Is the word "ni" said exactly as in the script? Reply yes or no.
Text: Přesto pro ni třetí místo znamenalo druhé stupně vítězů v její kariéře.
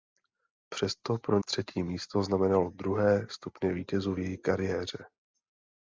no